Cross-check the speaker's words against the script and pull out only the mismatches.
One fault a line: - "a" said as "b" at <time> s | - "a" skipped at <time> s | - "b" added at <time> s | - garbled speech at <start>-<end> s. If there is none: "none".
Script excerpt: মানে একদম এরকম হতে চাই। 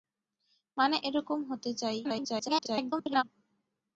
- "একদম" skipped at 1.0 s
- garbled speech at 2.0-3.2 s